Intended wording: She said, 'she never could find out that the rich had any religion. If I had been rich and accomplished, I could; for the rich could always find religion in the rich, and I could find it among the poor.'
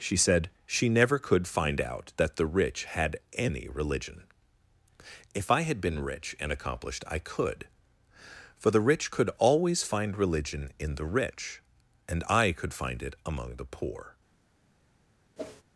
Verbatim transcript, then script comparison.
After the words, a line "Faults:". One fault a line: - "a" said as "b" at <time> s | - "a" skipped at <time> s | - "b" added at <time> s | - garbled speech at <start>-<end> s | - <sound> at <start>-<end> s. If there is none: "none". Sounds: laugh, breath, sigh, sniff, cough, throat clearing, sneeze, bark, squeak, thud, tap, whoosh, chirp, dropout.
She said, 'she never could find out that the rich had any religion. If I had been rich and accomplished, I could; for the rich could always find religion in the rich, and I could find it among the poor.'
Faults:
- whoosh at 15.4-15.6 s